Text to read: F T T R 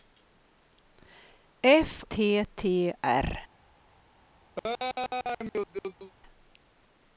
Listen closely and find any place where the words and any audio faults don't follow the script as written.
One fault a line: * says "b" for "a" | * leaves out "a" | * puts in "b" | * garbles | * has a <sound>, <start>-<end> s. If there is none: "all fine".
* has a laugh, 4.6-6.1 s